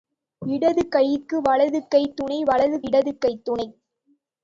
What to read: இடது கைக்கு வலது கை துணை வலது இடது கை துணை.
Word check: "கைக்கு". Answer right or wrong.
right